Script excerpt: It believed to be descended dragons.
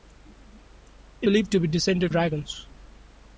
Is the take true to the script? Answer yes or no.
yes